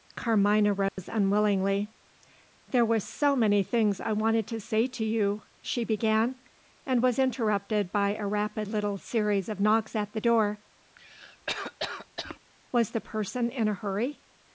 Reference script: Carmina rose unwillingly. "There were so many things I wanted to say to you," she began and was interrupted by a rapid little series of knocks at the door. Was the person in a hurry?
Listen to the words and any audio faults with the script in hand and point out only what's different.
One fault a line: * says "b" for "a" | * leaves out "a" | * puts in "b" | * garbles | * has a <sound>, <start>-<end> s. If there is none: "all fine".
* has a dropout, 0.9-1.0 s
* has a cough, 11.0-12.4 s